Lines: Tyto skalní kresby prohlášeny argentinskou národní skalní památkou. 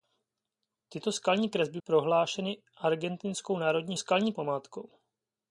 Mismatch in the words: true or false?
false